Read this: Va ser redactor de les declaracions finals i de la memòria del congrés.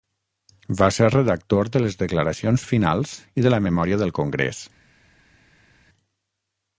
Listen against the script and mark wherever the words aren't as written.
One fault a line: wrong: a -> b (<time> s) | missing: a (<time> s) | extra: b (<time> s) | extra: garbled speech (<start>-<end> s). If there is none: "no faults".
no faults